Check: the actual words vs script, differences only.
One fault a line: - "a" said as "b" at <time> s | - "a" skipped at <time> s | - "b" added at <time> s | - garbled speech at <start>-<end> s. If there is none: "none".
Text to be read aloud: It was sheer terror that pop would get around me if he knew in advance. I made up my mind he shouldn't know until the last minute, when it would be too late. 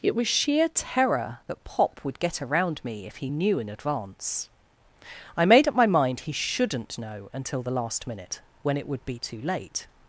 none